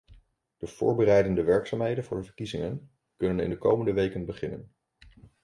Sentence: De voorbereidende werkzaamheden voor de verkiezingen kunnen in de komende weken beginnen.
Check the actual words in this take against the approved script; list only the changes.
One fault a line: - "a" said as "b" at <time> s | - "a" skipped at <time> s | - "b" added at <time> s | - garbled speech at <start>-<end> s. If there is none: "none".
none